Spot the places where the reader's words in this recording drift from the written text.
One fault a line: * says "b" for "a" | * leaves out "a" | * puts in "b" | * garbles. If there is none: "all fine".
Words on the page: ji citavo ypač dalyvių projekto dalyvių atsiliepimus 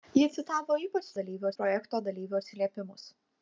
all fine